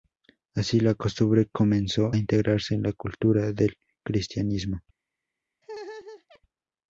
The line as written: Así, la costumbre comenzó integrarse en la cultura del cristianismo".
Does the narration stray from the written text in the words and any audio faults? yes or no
yes